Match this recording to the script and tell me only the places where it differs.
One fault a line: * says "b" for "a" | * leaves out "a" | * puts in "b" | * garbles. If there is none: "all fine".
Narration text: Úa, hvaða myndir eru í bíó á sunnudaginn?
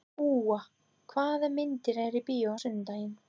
all fine